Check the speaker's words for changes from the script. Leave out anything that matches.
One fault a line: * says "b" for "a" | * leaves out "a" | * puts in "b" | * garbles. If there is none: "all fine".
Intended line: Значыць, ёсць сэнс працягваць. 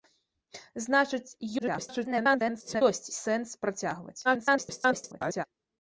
* garbles
* garbles